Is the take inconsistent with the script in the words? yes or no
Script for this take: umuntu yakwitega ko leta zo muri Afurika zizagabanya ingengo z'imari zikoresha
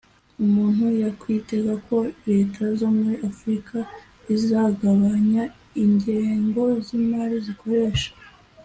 no